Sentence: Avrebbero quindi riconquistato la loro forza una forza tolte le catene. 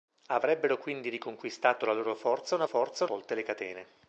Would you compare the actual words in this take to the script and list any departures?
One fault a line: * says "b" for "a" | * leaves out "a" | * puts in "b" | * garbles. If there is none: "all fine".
all fine